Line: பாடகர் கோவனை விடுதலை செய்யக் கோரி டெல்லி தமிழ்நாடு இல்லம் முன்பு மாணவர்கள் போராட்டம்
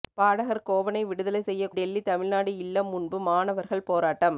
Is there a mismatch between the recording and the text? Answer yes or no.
yes